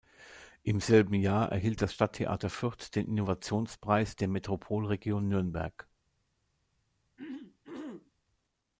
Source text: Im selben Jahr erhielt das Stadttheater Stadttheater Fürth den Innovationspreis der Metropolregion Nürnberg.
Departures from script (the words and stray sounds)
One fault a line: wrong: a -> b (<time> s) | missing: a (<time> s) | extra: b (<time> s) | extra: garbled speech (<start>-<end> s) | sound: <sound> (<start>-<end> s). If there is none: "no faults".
missing: Stadttheater (2.5 s)
sound: throat clearing (7.2-8.1 s)